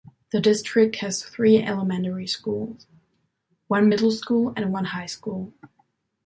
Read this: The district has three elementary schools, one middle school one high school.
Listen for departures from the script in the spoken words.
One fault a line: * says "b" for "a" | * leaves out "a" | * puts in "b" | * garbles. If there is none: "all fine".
* puts in "and"